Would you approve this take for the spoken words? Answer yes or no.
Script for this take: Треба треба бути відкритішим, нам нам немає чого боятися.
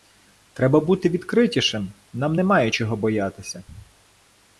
no